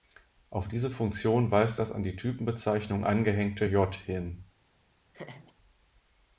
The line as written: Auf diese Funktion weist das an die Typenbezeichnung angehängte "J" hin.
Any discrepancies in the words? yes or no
no